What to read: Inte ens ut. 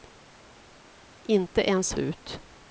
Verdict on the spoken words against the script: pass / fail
pass